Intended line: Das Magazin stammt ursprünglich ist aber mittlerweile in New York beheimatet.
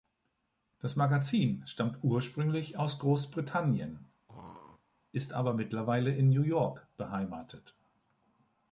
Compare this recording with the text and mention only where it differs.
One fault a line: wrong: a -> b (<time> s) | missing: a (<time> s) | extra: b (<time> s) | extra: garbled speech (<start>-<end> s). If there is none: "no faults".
extra: aus Großbritannien (2.8 s)